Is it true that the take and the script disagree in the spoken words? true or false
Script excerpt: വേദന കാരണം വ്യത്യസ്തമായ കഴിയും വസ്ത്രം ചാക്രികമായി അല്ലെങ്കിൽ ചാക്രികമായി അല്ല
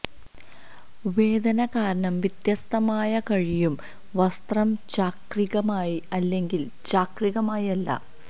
false